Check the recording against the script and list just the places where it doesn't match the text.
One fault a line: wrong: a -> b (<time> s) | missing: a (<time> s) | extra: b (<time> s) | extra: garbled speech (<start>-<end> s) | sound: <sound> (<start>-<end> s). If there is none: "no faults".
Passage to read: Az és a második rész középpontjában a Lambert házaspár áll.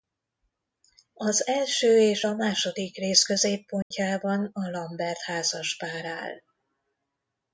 extra: első (1.5 s)
sound: dropout (3.8-3.9 s)